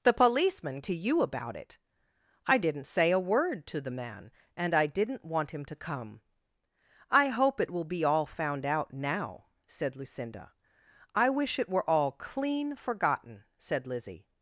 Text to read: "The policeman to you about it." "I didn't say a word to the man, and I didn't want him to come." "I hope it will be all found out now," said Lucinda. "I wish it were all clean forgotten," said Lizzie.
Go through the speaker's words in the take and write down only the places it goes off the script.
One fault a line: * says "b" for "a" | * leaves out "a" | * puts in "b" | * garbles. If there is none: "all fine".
all fine